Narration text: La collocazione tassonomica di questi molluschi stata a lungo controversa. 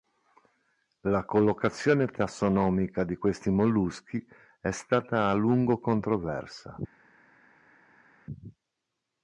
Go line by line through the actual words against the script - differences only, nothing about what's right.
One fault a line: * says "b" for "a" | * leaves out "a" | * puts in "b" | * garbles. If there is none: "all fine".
* puts in "è"